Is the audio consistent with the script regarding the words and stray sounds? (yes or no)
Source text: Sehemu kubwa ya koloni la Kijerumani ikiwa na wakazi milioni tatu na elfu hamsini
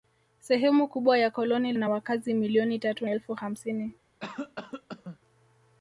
no